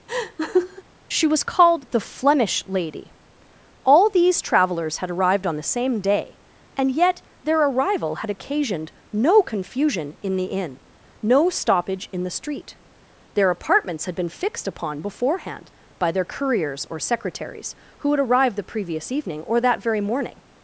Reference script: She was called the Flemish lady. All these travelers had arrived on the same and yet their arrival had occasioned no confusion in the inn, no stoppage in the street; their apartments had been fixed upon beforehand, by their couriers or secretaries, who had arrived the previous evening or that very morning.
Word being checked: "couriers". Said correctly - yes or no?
yes